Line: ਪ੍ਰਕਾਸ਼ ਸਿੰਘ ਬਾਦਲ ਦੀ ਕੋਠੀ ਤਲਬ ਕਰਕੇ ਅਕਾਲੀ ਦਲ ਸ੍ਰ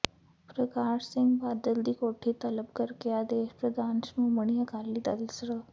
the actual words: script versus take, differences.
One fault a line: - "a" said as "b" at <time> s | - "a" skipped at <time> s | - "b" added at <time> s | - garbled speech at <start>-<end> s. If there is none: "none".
- "ਆਦੇਸ਼ ਪ੍ਰਧਾਨ ਸ਼੍ਰੋਮਣੀ" added at 3.1 s